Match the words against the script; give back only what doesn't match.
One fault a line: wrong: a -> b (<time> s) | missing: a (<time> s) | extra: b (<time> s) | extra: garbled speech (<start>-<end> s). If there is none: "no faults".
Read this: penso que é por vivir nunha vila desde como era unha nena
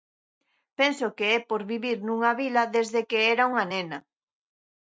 wrong: como -> que (3.1 s)